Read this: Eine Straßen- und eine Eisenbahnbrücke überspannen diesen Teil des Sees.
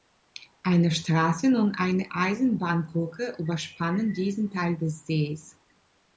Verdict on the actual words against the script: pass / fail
pass